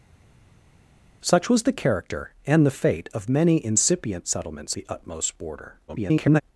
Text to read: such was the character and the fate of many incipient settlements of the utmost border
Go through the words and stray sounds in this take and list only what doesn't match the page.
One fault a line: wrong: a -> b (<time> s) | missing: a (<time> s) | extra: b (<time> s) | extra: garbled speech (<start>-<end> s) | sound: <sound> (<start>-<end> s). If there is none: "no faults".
missing: of (4.7 s)
extra: garbled speech (5.9-6.4 s)